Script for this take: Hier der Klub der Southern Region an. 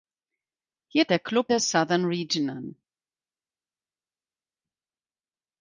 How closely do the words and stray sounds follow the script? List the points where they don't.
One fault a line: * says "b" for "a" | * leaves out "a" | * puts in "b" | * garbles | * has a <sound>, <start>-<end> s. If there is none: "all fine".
all fine